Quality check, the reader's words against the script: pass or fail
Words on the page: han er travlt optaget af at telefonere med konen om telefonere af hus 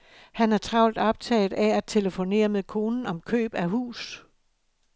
fail